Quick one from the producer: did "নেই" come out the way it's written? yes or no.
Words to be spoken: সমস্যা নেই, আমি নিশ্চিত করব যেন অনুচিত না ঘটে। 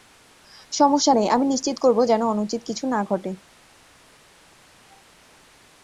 yes